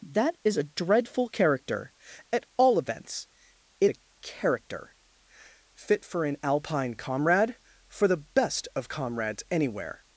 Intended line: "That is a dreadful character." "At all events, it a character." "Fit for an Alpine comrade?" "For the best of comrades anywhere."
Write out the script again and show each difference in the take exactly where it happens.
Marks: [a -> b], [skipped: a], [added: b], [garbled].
"That is a dreadful character." "At all events, it a character." "Fit for an Alpine comrade?" "For the best of comrades anywhere."